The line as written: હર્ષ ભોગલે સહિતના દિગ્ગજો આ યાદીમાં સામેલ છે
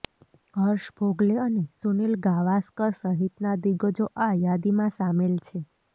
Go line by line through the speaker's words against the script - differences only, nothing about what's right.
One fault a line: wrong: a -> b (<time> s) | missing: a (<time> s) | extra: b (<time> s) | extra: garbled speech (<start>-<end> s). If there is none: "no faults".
extra: અને સુનિલ ગાવાસ્કર (1.5 s)